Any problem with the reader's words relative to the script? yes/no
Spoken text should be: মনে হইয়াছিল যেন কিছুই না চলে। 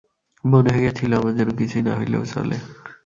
yes